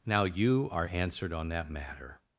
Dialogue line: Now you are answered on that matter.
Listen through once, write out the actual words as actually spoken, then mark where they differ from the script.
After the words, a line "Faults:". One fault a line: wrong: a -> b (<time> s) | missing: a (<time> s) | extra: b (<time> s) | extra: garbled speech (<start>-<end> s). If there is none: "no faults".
Now you are answered on that matter.
Faults:
no faults